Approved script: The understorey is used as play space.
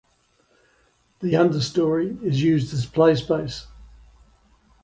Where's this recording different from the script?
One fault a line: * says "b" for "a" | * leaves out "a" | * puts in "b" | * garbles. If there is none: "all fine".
all fine